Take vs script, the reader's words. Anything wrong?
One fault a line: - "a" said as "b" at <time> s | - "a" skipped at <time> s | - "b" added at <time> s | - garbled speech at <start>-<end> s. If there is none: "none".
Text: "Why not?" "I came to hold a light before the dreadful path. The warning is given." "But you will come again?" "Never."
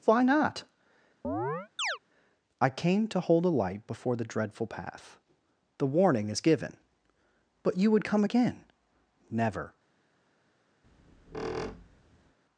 - "will" said as "would" at 7.9 s